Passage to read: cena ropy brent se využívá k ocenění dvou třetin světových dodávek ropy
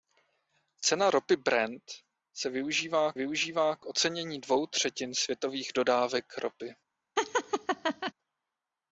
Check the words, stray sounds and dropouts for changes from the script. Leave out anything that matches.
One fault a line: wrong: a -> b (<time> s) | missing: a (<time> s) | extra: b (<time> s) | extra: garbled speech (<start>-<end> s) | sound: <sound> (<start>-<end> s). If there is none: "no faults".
extra: využívá (3.1 s)
sound: laugh (7.2-8.1 s)